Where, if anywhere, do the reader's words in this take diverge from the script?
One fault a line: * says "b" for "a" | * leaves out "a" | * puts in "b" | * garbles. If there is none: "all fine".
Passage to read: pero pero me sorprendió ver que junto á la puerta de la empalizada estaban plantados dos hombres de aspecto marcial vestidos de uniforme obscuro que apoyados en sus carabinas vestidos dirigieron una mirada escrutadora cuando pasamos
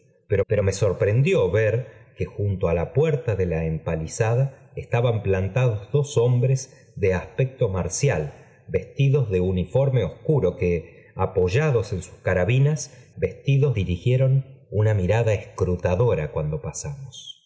all fine